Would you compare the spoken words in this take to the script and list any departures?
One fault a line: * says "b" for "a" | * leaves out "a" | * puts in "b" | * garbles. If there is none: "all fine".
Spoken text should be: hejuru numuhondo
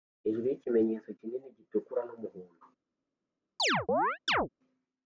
* puts in "yikimenyetso kinini gitukura"